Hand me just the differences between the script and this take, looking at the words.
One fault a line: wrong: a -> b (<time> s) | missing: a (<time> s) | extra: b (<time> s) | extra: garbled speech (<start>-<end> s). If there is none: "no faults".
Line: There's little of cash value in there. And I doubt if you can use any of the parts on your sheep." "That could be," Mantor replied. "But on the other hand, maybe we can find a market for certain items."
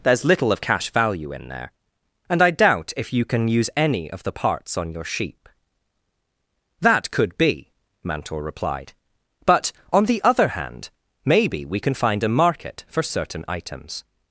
no faults